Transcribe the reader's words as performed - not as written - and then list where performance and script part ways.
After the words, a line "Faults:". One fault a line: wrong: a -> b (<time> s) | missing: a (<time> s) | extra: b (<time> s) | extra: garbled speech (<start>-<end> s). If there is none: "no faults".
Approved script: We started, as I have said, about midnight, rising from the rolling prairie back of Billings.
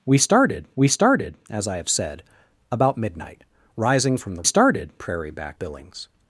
We started we started, as I have said, about midnight, rising from the started prairie back Billings.
Faults:
extra: we started (0.8 s)
wrong: rolling -> started (4.4 s)
missing: of (5.6 s)